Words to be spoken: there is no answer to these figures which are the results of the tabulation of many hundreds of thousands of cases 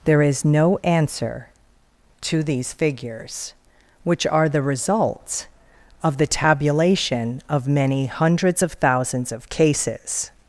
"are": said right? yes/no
yes